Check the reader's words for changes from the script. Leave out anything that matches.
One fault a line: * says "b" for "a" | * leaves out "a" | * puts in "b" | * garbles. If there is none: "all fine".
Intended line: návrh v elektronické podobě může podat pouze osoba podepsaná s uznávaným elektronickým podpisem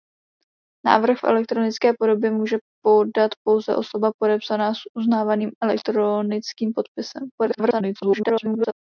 * garbles